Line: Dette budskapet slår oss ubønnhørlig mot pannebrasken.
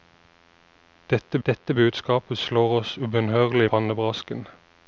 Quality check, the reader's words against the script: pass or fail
fail